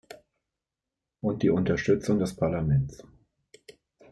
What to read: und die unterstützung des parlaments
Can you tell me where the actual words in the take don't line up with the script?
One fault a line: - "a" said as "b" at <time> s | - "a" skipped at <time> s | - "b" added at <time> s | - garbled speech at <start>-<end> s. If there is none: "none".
none